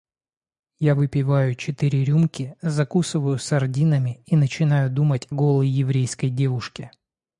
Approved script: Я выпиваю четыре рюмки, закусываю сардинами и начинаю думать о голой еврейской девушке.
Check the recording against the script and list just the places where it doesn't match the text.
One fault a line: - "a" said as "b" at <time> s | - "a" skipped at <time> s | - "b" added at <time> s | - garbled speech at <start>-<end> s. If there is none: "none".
- "о" skipped at 5.3 s